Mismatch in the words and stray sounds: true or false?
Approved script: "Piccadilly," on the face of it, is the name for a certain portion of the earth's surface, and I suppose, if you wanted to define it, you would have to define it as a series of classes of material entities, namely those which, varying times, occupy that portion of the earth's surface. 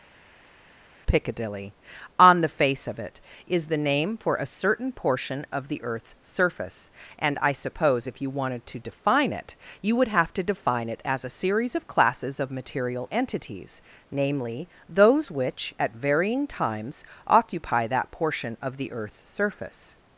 true